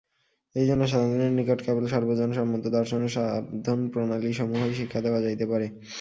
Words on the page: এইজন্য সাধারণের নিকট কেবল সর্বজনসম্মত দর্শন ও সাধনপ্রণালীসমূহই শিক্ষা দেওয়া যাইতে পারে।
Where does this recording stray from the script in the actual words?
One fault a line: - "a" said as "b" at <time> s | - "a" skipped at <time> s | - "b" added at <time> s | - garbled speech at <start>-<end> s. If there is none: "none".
none